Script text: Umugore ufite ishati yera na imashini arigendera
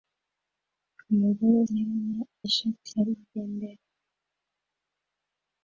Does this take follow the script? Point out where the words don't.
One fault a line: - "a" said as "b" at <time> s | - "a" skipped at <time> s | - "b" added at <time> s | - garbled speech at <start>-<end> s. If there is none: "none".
- "ufite ishati" skipped at 1.6 s
- "imashini" said as "ishati" at 2.5 s